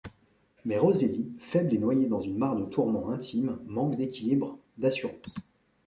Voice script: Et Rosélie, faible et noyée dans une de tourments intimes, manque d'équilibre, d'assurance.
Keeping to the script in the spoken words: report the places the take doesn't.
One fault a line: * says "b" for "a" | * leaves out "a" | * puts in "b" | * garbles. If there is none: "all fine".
* says "Mais" for "Et"
* puts in "mare"